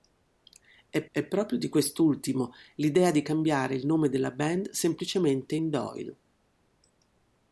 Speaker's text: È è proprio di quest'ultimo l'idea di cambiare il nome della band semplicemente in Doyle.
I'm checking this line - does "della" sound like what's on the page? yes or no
yes